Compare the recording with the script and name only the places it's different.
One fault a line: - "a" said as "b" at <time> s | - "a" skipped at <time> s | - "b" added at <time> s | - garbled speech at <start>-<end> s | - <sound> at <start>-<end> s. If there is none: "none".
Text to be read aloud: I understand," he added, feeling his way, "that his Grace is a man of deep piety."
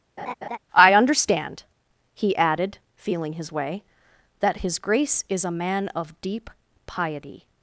- laugh at 0.2-0.6 s